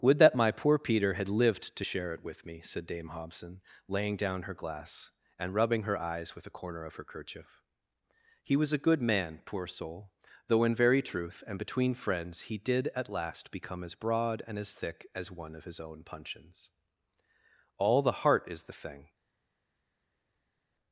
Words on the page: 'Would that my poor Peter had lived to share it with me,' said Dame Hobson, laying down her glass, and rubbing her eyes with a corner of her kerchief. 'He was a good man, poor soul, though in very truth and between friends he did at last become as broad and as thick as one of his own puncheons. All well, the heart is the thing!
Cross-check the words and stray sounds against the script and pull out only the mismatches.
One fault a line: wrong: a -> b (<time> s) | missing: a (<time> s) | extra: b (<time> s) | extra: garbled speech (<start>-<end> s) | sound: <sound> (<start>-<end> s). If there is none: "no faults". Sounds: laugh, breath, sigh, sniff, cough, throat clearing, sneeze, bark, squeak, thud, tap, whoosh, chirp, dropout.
missing: well (18.0 s)